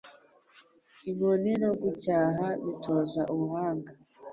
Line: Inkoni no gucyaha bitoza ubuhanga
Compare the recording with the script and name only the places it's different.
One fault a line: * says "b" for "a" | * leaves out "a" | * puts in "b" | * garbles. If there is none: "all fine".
all fine